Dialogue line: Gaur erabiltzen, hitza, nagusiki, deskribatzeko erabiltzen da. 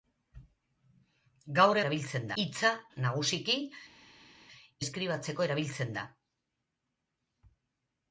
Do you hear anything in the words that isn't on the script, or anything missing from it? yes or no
no